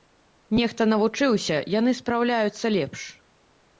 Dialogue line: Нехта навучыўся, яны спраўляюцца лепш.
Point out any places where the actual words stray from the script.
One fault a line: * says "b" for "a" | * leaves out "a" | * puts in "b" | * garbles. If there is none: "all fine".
all fine